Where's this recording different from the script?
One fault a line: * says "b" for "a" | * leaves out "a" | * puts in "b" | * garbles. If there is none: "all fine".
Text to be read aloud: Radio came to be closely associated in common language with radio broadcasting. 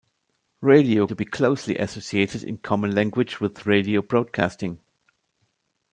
* leaves out "came"